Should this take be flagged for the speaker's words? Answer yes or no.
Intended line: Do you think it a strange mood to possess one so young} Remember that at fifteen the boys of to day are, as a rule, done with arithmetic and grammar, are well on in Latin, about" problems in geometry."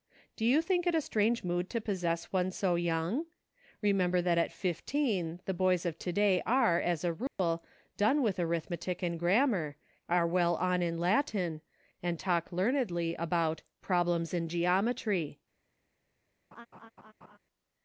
yes